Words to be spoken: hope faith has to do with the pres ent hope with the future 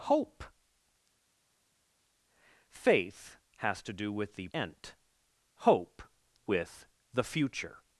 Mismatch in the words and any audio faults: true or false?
true